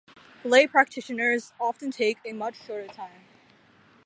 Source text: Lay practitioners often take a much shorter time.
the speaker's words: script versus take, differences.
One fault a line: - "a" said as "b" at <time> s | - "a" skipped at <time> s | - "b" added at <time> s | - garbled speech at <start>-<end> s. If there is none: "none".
none